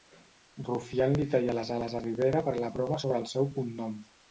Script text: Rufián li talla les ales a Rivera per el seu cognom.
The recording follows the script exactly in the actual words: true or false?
false